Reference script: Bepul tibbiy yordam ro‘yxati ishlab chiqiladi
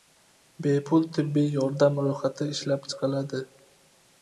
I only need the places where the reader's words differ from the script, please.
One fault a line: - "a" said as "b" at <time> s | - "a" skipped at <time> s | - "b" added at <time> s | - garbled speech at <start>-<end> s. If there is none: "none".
none